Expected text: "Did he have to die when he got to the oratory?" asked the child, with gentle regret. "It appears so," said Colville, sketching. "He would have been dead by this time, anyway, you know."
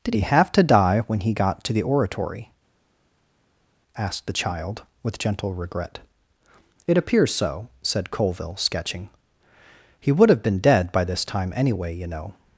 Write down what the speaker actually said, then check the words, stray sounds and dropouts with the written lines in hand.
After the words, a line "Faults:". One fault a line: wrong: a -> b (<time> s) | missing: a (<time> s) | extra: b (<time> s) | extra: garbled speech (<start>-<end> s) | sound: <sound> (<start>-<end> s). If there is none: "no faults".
"Did he have to die when he got to the oratory?" asked the child, with gentle regret. "It appears so," said Colville, sketching. "He would have been dead by this time, anyway, you know."
Faults:
no faults